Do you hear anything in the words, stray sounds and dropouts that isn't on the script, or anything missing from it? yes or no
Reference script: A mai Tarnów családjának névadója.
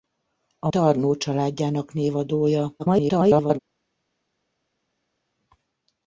yes